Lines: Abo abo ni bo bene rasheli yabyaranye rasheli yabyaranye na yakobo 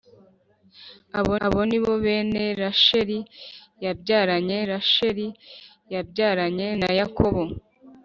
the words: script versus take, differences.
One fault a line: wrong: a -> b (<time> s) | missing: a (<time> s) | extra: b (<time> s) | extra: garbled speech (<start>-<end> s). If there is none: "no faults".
no faults